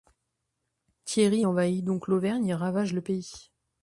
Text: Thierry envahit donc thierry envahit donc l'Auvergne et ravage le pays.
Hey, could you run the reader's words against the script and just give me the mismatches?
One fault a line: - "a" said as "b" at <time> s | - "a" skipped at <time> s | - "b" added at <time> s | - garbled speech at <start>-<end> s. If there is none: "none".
- "thierry envahit donc" skipped at 2.1 s